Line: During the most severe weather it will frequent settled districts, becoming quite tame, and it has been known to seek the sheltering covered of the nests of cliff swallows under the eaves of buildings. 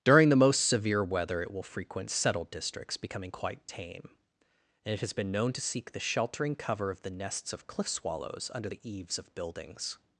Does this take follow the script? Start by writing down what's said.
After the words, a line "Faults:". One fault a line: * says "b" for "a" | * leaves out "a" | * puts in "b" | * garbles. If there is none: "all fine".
During the most severe weather it will frequent settled districts, becoming quite tame, and it has been known to seek the sheltering cover of the nests of cliff swallows under the eaves of buildings.
Faults:
* says "cover" for "covered"